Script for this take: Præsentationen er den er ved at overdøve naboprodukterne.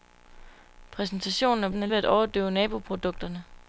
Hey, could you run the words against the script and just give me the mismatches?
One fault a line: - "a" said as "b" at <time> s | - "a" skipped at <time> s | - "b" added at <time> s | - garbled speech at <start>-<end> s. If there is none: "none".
none